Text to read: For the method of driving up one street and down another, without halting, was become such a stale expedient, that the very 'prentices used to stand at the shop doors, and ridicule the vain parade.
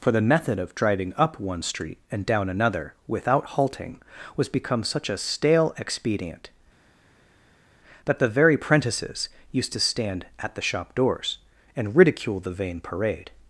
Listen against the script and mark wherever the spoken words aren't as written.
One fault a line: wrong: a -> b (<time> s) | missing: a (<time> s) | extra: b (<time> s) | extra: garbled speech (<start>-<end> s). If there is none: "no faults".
no faults